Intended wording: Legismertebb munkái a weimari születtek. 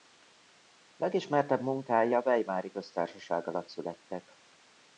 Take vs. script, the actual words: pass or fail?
fail